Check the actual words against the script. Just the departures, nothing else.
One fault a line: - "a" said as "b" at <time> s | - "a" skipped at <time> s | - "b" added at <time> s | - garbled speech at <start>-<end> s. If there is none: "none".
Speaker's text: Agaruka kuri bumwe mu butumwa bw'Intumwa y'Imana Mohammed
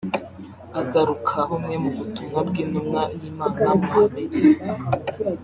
- "kuri" skipped at 1.4 s